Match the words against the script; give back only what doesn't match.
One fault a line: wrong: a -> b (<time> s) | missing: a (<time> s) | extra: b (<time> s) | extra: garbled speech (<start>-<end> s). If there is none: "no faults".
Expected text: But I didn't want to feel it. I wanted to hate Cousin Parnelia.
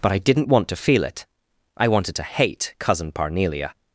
no faults